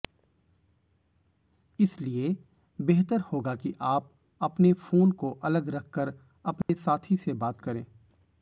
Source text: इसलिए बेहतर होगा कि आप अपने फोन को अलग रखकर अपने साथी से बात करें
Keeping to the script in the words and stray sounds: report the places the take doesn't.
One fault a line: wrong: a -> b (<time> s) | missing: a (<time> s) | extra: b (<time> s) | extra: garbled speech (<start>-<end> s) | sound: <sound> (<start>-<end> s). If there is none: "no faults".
sound: dropout (6.6-6.7 s)